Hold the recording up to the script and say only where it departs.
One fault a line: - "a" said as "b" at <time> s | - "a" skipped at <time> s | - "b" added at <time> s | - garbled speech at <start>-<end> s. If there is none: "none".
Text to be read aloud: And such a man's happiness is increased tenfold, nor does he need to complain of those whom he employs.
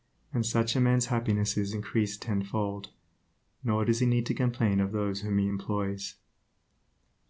none